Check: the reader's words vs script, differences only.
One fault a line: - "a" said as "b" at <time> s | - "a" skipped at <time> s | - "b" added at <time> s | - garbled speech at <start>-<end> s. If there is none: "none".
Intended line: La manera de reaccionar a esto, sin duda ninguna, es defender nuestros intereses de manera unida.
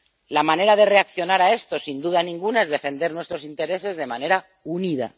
none